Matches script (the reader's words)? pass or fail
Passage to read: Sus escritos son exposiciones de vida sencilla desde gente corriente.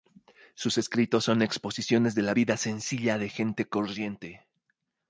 fail